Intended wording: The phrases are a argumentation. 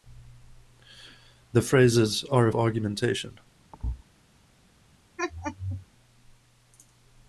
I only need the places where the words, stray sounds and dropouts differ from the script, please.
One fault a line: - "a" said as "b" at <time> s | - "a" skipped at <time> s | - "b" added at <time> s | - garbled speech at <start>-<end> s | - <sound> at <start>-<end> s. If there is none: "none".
- thud at 3.7-4.0 s
- laugh at 5.2-5.9 s